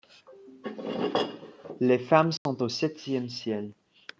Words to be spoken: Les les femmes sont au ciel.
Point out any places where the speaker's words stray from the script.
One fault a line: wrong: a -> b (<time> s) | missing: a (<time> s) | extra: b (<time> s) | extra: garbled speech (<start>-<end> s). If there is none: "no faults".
missing: les (2.0 s)
extra: septième (2.7 s)